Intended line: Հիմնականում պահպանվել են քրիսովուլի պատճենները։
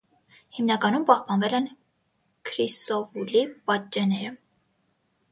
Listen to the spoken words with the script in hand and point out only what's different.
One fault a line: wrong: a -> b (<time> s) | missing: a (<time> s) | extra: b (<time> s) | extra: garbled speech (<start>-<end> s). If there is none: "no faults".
no faults